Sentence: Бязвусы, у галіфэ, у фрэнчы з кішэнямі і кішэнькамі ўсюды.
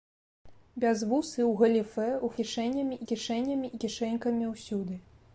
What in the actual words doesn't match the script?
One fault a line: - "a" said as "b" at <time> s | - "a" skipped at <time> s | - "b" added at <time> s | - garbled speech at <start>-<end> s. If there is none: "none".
- "фрэнчы" said as "кішэнямі" at 2.4 s